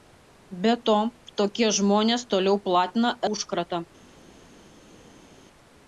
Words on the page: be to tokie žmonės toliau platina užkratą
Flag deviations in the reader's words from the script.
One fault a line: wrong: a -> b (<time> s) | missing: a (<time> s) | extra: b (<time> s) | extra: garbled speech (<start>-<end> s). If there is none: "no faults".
no faults